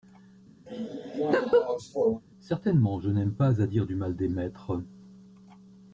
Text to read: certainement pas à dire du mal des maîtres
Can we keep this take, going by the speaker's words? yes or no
no